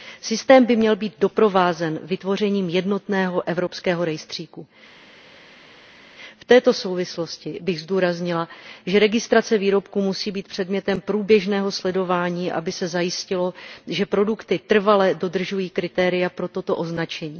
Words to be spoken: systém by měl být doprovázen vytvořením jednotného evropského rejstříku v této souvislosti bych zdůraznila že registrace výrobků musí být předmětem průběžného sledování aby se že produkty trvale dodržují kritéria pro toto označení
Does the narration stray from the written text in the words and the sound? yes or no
yes